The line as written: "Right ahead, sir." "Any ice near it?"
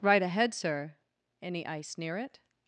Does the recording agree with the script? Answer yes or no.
yes